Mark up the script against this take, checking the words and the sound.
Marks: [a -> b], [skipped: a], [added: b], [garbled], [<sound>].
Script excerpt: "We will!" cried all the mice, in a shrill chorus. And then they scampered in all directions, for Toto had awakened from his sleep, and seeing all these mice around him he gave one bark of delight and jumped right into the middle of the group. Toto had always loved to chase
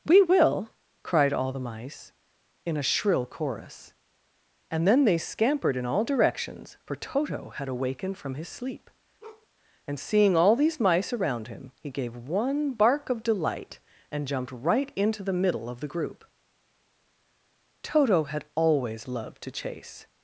"We will!" cried all the mice, in a shrill chorus. And then they scampered in all directions, for Toto had awakened from his sleep, [bark] and seeing all these mice around him he gave one bark of delight and jumped right into the middle of the group. Toto had always loved to chase